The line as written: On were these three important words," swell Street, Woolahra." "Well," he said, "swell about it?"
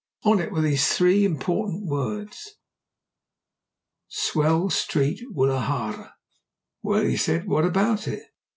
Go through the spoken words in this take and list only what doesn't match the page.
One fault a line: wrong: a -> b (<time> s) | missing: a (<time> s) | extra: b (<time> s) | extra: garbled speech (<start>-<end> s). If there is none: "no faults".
extra: it (0.4 s)
wrong: swell -> what (7.5 s)